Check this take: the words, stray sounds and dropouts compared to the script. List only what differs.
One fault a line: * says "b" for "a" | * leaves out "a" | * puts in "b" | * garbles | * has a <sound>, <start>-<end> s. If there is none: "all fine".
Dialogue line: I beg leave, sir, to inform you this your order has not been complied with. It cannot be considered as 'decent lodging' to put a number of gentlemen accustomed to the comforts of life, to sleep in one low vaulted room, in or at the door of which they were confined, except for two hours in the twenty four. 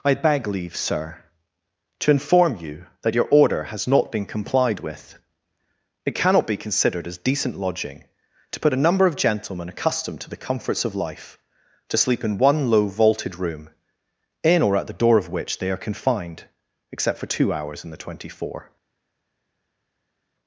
* says "that" for "this"
* says "are" for "were"